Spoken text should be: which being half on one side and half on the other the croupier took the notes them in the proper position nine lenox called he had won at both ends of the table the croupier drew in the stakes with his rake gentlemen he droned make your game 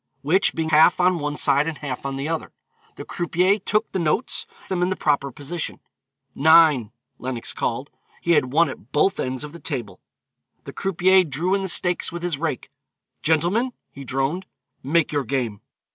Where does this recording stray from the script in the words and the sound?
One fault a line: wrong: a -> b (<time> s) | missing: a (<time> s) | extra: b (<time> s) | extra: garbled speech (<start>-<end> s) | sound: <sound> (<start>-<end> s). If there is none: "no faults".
no faults